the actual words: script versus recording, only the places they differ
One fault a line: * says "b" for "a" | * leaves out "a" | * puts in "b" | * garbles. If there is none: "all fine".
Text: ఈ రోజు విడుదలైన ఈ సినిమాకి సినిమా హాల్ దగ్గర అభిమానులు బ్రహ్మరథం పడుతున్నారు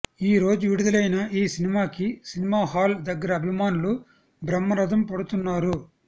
all fine